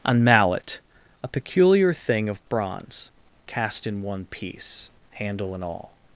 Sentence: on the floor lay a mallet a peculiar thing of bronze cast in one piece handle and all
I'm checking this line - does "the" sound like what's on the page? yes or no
no